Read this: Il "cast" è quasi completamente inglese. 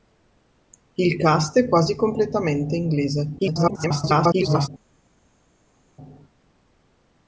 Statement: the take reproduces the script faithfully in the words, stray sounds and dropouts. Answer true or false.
false